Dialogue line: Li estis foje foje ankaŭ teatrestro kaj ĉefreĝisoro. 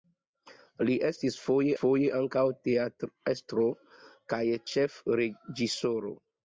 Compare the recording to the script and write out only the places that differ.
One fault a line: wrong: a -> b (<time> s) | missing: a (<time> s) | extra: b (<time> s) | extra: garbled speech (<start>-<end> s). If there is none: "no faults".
no faults